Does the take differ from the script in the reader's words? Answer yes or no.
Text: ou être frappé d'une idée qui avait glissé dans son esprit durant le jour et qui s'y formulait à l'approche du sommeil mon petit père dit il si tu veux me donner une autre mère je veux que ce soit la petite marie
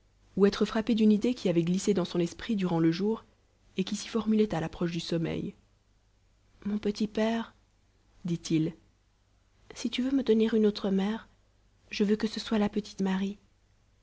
no